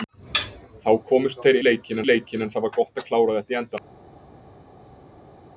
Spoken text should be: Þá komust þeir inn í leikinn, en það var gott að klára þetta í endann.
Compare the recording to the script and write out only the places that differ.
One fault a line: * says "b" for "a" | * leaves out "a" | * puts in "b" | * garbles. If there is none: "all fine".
* says "leikinn" for "inn"